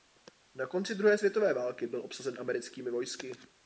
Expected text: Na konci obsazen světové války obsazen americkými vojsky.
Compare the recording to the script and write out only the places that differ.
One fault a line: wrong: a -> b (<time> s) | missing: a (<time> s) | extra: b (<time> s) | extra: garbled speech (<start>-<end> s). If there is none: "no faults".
wrong: obsazen -> druhé (0.9 s)
extra: byl (1.9 s)